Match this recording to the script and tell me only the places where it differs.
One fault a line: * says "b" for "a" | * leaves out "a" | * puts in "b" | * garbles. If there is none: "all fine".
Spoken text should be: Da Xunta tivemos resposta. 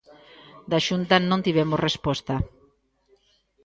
* puts in "non"